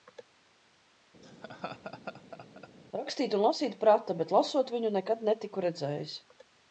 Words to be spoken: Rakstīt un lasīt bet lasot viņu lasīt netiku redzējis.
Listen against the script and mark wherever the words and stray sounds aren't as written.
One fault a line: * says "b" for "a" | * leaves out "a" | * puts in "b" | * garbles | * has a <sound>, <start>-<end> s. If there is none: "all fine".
* has a laugh, 1.2-2.7 s
* puts in "prata"
* says "nekad" for "lasīt"